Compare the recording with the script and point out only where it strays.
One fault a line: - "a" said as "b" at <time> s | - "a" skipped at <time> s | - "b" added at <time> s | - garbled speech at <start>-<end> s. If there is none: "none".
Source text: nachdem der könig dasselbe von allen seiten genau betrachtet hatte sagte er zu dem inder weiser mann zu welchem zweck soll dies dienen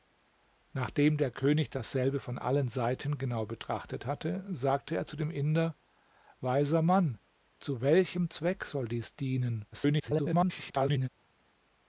- garbled speech at 9.7-11.1 s